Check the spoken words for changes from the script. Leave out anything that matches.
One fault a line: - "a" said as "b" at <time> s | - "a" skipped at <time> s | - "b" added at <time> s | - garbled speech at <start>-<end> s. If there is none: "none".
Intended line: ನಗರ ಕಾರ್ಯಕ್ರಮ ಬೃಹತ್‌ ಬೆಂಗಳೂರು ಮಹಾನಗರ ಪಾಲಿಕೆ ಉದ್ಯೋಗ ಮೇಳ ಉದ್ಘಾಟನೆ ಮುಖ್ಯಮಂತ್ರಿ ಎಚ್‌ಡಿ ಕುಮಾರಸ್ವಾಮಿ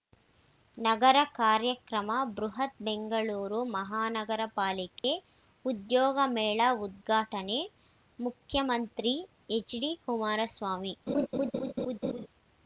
none